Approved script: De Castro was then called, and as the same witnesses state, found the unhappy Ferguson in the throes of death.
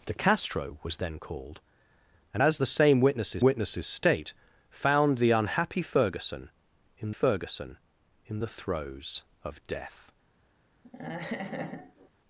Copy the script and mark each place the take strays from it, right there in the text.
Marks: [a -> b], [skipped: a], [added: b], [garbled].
De Castro was then called, and as the same witnesses [added: witnesses] state, found the unhappy Ferguson in [added: Ferguson in] the throes of death.